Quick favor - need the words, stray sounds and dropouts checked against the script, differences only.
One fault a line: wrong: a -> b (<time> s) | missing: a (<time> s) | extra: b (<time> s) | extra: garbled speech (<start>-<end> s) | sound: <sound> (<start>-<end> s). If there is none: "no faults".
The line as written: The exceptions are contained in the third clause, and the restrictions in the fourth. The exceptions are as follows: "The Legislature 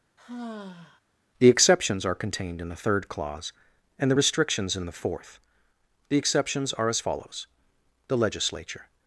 sound: sigh (0.2-1.0 s)